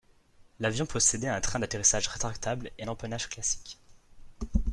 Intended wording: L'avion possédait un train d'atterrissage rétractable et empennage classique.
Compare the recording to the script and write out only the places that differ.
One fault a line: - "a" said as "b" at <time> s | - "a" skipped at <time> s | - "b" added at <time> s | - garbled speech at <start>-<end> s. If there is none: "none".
none